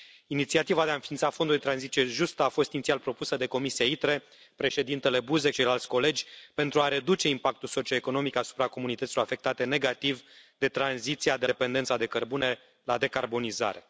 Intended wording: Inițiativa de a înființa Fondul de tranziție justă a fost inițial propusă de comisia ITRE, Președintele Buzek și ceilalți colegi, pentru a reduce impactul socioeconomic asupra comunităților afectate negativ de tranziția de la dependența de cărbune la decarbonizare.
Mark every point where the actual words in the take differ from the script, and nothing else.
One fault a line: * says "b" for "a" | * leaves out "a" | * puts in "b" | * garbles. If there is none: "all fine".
* leaves out "și"
* leaves out "la"